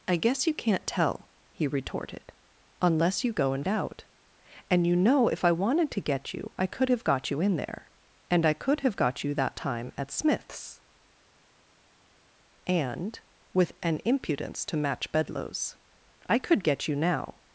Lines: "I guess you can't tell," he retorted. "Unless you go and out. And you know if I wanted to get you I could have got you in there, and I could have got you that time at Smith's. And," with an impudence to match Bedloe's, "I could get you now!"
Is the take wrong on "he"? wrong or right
right